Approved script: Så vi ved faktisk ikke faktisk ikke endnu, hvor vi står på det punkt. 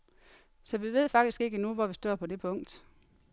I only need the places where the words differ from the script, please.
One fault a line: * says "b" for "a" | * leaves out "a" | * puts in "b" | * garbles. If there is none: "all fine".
* leaves out "faktisk ikke"